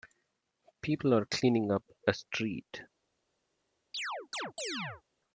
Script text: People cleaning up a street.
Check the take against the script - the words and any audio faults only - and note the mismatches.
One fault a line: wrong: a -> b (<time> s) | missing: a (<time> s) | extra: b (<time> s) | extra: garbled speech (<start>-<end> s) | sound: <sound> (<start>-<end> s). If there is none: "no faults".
extra: are (1.1 s)
sound: chirp (3.9-5.0 s)